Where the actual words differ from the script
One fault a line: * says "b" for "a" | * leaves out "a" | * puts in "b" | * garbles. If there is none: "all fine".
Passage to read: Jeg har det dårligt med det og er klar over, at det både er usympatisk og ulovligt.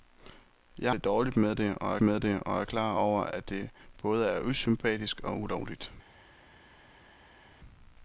* says "det dårligt med" for "har"
* says "og" for "dårligt"